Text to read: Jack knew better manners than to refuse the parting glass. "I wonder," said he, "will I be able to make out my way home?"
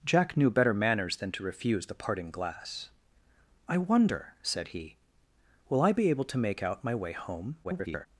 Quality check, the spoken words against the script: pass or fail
fail